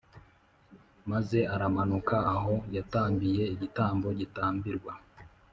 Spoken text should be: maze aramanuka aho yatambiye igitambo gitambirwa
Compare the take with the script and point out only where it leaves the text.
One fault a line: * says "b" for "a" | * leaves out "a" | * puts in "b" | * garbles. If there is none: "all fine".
all fine